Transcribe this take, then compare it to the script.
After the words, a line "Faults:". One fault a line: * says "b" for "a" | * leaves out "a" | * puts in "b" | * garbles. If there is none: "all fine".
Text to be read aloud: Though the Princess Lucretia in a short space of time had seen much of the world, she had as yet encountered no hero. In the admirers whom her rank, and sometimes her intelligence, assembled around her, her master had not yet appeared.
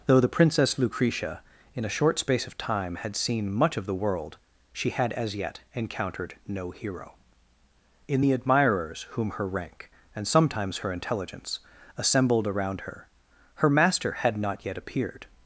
Though the Princess Lucretia in a short space of time had seen much of the world, she had as yet encountered no hero. In the admirers whom her rank, and sometimes her intelligence, assembled around her, her master had not yet appeared.
Faults:
all fine